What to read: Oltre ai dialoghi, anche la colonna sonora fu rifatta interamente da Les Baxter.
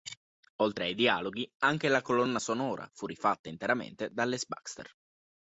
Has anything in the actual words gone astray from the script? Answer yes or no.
no